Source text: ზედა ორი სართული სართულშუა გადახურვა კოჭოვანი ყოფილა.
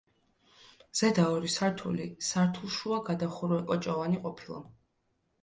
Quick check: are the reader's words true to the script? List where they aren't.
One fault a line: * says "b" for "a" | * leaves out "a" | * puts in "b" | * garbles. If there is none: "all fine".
all fine